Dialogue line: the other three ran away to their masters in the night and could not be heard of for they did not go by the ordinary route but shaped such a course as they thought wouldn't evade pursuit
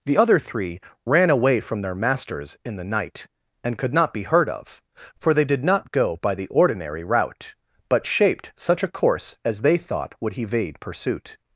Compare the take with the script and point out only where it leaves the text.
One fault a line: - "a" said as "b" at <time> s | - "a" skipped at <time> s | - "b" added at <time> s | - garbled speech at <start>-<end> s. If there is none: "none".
- "to" said as "from" at 1.6 s
- "wouldn't" said as "would" at 10.2 s